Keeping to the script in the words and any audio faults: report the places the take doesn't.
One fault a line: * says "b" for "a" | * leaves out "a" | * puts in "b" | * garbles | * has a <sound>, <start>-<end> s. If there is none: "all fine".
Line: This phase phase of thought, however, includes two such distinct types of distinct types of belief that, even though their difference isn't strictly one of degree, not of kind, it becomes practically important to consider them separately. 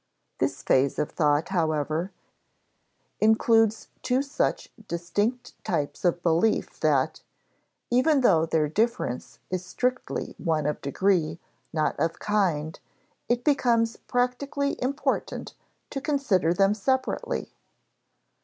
* leaves out "phase"
* leaves out "distinct types of"
* says "is" for "isn't"